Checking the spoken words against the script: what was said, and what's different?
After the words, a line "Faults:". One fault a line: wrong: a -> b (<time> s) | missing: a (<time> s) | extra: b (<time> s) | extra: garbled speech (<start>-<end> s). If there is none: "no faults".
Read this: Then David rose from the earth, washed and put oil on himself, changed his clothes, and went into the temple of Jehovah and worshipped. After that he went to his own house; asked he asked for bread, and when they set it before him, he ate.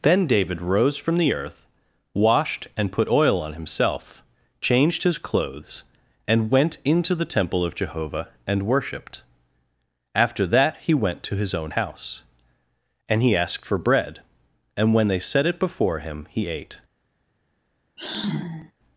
Then David rose from the earth, washed and put oil on himself, changed his clothes, and went into the temple of Jehovah and worshipped. After that he went to his own house; and he asked for bread, and when they set it before him, he ate.
Faults:
wrong: asked -> and (13.1 s)